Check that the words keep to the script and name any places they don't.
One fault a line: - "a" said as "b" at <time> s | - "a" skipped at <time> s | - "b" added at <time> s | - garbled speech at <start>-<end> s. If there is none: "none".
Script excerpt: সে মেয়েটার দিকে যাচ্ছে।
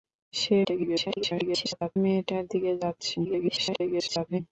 - garbled speech at 0.6-2.0 s
- garbled speech at 3.2-4.4 s